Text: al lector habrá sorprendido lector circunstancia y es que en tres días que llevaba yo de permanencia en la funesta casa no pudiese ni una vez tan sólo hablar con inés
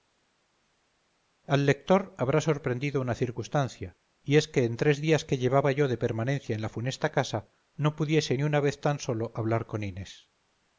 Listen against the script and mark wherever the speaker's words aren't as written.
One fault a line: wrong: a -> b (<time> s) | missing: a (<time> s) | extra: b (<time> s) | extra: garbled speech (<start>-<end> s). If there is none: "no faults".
wrong: lector -> una (3.0 s)